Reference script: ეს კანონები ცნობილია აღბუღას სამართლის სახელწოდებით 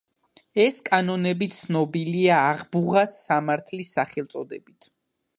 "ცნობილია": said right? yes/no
yes